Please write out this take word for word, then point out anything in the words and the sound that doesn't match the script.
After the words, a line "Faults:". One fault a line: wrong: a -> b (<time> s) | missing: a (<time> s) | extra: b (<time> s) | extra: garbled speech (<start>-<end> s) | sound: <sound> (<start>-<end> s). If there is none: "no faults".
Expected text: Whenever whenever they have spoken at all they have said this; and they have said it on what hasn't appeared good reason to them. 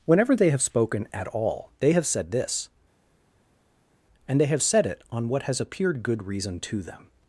Whenever they have spoken at all they have said this; and they have said it on what has appeared good reason to them.
Faults:
missing: whenever (0.3 s)
wrong: hasn't -> has (5.4 s)